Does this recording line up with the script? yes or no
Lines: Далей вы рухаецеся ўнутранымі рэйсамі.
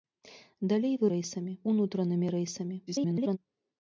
no